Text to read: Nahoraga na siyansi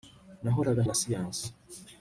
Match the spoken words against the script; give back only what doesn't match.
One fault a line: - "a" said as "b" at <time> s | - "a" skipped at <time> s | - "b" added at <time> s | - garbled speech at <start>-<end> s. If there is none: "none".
none